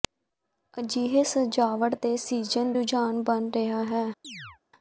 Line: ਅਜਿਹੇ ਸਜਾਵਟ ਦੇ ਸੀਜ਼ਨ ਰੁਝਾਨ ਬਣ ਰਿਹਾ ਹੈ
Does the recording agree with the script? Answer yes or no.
yes